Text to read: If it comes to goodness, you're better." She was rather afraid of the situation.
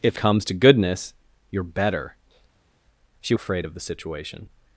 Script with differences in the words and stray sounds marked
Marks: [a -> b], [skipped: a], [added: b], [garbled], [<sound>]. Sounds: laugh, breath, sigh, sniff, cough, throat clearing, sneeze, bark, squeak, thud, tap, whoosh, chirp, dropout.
If [skipped: it] comes to goodness, you're better." She [skipped: was rather] afraid of the situation.